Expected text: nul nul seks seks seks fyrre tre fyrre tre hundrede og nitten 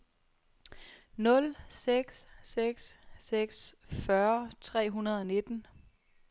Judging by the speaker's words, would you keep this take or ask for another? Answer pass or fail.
fail